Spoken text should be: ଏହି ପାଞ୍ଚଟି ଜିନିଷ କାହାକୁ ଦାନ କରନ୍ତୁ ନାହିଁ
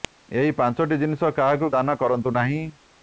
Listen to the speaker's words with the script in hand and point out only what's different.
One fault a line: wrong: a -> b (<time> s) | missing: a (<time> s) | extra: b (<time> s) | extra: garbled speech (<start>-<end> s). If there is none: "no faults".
no faults